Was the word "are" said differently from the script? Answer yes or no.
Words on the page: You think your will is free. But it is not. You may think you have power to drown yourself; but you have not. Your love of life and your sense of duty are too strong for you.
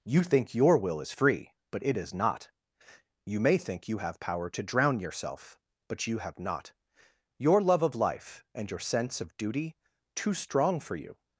yes